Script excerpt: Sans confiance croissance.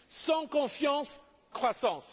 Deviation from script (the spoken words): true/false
false